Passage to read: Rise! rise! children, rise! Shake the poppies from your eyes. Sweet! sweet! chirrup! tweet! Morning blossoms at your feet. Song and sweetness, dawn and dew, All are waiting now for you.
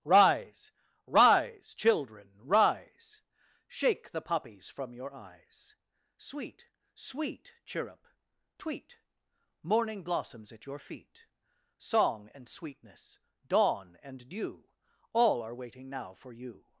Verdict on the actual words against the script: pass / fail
pass